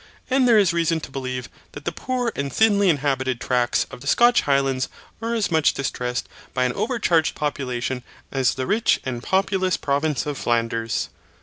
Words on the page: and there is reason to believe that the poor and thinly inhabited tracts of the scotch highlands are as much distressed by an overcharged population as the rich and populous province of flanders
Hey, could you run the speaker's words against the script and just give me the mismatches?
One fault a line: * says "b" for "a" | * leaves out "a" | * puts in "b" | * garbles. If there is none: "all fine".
all fine